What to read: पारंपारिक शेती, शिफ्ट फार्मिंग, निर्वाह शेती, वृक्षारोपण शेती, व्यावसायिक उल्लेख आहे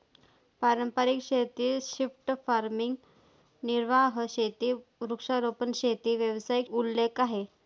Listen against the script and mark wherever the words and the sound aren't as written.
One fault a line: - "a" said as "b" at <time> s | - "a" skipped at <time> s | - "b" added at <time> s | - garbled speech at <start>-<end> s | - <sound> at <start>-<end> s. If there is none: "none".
none